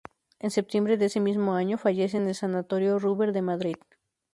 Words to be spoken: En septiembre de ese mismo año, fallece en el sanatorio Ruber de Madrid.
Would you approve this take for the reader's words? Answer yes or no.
yes